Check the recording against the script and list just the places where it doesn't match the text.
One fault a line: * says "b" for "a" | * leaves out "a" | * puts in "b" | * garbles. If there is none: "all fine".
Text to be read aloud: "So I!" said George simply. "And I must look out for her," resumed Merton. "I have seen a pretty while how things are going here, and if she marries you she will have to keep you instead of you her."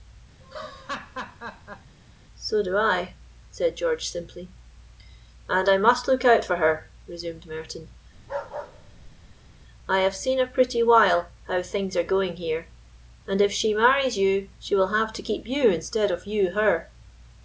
* puts in "do"